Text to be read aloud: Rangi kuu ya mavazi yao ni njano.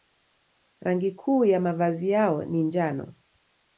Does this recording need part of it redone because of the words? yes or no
no